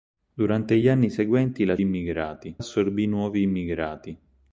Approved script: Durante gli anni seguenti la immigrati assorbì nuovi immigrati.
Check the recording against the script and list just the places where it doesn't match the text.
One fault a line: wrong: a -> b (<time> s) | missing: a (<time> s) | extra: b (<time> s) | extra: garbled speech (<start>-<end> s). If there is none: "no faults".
no faults